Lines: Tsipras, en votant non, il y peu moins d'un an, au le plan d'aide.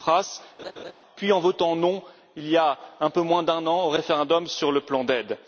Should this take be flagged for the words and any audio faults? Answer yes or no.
yes